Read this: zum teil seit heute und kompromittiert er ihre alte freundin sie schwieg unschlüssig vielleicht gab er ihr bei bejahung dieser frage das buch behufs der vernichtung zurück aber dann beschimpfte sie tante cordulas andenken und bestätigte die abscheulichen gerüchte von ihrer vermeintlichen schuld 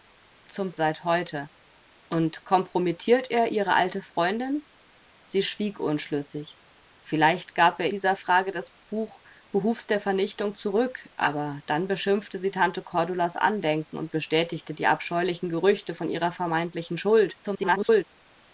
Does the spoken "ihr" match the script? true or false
false